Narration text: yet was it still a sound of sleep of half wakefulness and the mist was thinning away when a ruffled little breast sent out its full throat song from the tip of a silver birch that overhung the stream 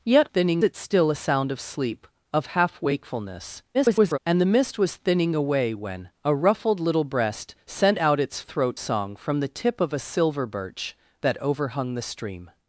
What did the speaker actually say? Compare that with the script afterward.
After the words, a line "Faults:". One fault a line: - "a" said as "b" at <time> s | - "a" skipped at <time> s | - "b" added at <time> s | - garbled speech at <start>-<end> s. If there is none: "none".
yet thinning it still a sound of sleep of half wakefulness [garbled] and the mist was thinning away when a ruffled little breast sent out its throat song from the tip of a silver birch that overhung the stream
Faults:
- "was" said as "thinning" at 0.3 s
- garbled speech at 3.7-4.2 s
- "full" skipped at 8.4 s